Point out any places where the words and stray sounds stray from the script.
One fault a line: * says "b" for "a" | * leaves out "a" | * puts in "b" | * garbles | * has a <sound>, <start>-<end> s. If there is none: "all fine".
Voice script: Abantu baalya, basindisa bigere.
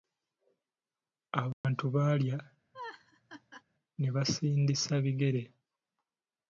* has a dropout, 1.5-1.6 s
* has a laugh, 2.7-3.6 s
* puts in "ne"